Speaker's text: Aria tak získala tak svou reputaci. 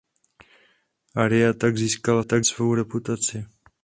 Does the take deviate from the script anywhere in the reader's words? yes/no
no